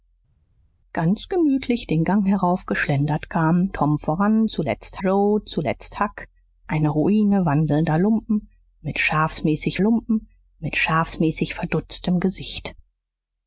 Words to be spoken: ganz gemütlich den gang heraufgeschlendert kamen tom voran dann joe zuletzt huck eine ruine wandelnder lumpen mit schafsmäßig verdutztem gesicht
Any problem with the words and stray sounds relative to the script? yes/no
yes